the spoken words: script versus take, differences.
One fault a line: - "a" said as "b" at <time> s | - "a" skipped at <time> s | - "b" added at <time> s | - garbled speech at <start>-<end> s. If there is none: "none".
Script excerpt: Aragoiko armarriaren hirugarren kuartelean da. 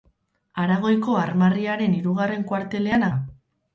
none